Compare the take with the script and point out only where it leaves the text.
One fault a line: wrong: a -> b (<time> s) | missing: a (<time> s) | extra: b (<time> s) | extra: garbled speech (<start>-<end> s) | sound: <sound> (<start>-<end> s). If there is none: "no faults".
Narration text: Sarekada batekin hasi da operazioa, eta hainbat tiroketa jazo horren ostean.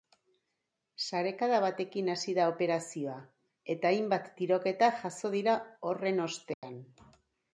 extra: dira (5.4 s)
sound: dropout (6.5-6.6 s)